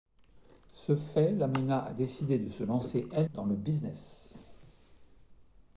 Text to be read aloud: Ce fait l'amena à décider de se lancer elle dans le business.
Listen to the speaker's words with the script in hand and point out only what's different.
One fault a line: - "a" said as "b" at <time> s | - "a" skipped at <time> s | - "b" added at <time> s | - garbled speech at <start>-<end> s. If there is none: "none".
none